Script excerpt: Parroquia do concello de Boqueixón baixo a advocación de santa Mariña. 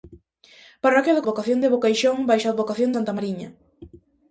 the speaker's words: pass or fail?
fail